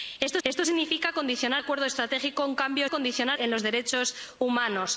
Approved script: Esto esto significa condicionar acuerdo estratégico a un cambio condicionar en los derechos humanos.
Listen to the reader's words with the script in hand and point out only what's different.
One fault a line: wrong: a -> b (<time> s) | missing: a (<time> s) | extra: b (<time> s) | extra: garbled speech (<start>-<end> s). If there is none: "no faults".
no faults